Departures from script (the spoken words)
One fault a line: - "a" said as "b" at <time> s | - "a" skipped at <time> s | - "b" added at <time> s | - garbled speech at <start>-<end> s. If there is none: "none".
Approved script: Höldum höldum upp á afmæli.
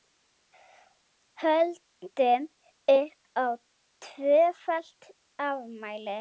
- "höldum" skipped at 2.4 s
- "tvöfalt" added at 4.0 s